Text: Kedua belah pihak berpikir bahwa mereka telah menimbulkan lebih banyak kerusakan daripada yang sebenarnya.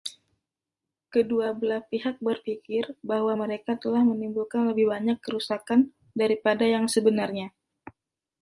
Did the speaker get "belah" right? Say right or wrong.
right